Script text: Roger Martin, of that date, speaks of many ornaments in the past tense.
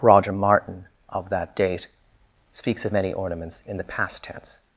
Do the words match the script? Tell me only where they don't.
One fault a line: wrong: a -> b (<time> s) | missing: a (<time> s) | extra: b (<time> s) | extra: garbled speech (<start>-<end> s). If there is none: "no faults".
no faults